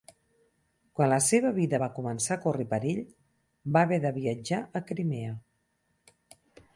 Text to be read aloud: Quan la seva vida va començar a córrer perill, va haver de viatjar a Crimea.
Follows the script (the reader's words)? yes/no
yes